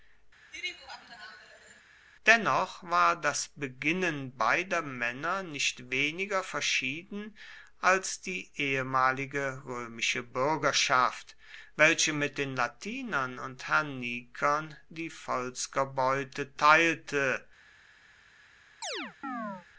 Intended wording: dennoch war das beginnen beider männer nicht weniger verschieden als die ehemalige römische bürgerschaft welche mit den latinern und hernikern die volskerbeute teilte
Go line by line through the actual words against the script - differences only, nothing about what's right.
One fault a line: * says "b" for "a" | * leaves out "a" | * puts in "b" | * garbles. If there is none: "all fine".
all fine